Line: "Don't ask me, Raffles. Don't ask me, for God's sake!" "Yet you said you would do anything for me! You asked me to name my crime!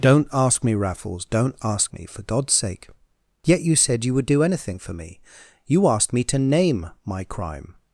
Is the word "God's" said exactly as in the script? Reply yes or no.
yes